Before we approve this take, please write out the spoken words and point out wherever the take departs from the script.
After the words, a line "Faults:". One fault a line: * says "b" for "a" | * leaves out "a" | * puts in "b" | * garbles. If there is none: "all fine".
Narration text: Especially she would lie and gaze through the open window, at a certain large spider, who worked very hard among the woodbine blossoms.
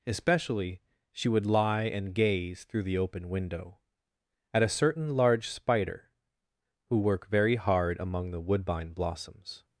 Especially she would lie and gaze through the open window, at a certain large spider, who work very hard among the woodbine blossoms.
Faults:
* says "work" for "worked"